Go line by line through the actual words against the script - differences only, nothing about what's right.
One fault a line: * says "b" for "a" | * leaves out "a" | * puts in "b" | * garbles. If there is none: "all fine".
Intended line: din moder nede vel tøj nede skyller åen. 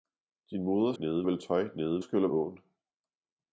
all fine